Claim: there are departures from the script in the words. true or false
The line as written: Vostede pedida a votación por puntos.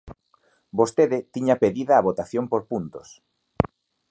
true